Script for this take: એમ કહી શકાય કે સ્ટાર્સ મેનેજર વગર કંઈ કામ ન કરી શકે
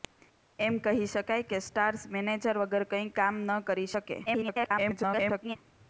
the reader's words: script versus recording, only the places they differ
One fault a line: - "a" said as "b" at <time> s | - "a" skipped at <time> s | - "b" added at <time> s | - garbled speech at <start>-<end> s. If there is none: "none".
- garbled speech at 4.3-5.6 s